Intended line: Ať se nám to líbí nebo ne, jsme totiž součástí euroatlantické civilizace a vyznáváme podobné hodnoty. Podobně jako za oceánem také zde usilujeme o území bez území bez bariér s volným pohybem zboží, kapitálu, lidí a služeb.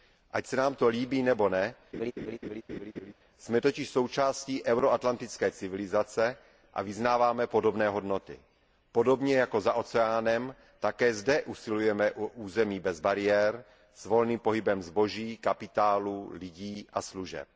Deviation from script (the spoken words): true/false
true